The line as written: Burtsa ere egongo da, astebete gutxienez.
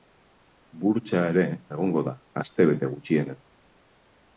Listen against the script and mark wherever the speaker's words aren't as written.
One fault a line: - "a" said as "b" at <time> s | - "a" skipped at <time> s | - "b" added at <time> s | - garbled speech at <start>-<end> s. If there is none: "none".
none